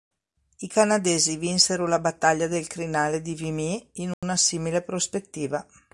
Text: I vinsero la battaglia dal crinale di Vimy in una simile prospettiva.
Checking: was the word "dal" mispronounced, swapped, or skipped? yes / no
yes